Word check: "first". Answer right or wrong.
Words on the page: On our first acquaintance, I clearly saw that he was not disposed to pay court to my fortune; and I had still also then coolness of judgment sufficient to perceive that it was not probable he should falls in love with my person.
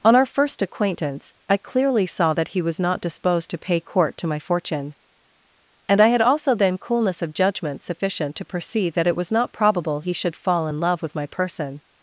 right